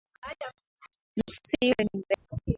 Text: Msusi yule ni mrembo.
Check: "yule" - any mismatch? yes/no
no